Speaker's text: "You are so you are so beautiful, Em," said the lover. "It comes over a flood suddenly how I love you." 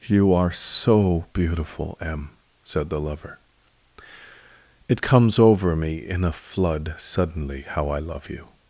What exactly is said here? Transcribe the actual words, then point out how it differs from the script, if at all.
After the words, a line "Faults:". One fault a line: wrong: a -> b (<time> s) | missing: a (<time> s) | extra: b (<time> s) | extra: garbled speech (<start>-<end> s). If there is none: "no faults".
"You are so beautiful, Em," said the lover. "It comes over me in a flood suddenly how I love you."
Faults:
missing: you are so (1.2 s)
extra: me in (5.8 s)